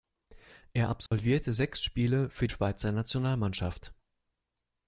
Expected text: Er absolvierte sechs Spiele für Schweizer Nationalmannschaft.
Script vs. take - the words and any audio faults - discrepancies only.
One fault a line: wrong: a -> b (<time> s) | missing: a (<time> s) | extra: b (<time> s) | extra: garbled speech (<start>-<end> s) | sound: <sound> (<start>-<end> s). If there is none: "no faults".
sound: dropout (1.1-1.1 s)